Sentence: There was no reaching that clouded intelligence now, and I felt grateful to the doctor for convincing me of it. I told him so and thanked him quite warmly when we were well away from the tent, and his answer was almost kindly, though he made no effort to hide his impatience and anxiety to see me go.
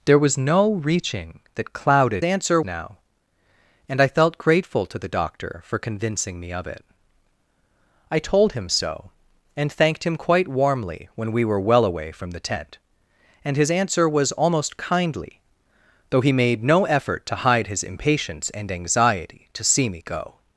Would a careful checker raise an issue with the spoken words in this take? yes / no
yes